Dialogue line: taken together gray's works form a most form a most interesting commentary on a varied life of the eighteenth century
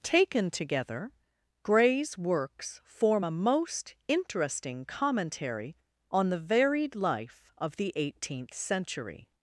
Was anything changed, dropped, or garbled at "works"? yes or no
no